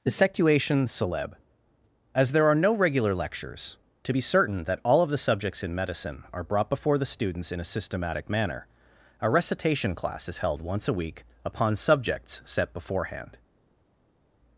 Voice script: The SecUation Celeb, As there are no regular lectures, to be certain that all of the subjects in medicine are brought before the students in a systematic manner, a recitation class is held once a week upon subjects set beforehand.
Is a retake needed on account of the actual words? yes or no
no